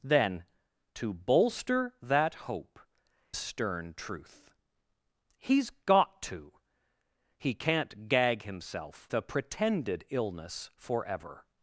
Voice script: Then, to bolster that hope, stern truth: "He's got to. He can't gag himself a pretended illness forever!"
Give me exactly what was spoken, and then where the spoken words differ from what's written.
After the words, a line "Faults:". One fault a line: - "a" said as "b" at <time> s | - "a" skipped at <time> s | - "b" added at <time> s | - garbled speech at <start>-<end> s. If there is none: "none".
Then, to bolster that hope, stern truth: "He's got to. He can't gag himself a pretended illness forever!"
Faults:
none